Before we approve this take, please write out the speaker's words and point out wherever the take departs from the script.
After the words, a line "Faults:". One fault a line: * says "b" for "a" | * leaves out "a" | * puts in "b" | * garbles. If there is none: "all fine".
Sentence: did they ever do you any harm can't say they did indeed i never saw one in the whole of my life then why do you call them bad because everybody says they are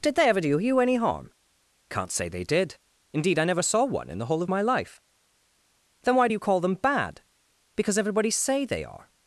did they ever do you any harm can't say they did indeed i never saw one in the whole of my life then why do you call them bad because everybody say they are
Faults:
* says "say" for "says"